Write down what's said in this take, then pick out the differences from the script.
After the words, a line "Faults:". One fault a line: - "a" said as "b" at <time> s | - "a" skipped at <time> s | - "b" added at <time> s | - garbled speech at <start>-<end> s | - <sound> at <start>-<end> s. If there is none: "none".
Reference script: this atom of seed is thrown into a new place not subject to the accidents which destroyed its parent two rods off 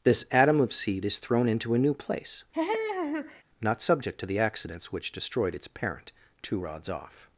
this atom of seed is thrown into a new place not subject to the accidents which destroyed its parent two rods off
Faults:
- laugh at 2.5-3.4 s